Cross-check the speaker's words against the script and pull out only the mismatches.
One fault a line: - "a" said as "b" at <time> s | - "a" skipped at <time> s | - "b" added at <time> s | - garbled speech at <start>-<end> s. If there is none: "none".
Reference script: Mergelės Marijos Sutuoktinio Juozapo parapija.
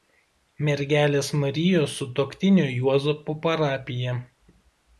none